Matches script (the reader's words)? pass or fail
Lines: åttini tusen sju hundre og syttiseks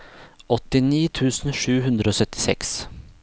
pass